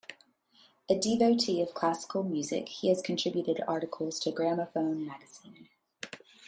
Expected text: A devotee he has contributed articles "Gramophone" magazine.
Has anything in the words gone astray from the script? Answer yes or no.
yes